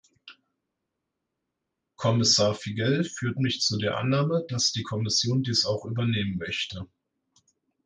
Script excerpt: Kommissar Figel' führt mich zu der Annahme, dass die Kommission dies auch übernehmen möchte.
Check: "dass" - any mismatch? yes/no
no